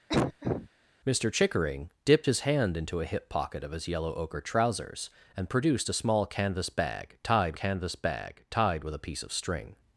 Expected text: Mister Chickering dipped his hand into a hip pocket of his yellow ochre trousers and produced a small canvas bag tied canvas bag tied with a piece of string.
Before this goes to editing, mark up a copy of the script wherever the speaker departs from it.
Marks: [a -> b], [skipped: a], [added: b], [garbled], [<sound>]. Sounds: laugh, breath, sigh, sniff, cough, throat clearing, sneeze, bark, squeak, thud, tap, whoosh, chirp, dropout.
[cough] Mister Chickering dipped his hand into a hip pocket of his yellow ochre trousers and produced a small canvas bag tied canvas bag tied with a piece of string.